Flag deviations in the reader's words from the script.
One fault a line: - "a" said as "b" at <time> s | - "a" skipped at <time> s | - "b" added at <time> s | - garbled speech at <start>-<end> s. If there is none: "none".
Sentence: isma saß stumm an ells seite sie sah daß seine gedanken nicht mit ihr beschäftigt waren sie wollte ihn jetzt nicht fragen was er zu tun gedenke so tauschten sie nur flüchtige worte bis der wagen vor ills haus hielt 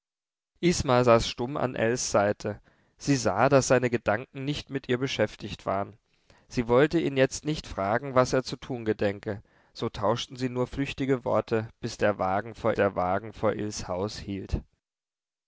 - "der wagen vor" added at 12.7 s